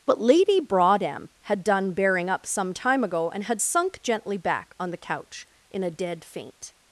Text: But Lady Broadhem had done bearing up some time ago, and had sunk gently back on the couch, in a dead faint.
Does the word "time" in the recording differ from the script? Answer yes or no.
no